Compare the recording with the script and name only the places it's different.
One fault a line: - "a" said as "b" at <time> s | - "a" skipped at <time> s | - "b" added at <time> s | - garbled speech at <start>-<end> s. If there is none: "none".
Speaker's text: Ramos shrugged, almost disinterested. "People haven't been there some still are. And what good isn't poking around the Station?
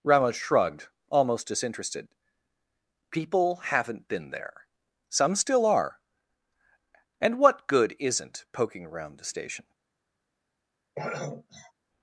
none